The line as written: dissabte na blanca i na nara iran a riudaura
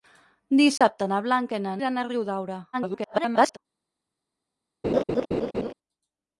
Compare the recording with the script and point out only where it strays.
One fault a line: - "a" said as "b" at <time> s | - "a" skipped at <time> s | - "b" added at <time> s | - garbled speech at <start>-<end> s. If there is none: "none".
- "nara" skipped at 1.8 s
- garbled speech at 2.7-3.6 s